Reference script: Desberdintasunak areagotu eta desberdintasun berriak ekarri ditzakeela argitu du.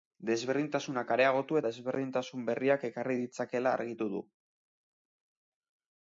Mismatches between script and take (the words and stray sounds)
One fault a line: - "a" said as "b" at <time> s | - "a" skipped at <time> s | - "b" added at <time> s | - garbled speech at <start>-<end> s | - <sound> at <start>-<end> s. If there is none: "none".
- "eta" skipped at 1.6 s